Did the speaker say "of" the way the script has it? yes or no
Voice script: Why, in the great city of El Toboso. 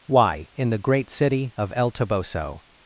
yes